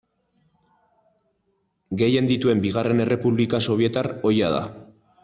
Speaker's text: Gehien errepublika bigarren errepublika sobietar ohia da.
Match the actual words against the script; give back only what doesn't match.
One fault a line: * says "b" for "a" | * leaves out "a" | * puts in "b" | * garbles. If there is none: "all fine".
* says "dituen" for "errepublika"